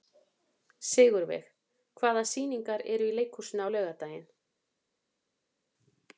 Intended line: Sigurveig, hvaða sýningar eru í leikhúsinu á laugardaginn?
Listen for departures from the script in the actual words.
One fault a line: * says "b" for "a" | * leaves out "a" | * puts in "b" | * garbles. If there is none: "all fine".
all fine